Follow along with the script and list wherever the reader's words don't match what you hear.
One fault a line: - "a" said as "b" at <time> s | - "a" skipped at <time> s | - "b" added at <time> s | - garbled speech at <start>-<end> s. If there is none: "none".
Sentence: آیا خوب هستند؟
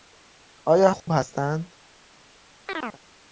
none